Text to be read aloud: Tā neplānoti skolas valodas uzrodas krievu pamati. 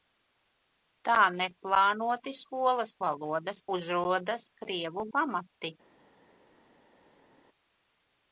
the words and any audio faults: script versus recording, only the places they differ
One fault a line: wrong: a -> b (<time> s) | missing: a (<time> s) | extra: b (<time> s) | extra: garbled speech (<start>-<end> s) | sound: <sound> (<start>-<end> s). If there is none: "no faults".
no faults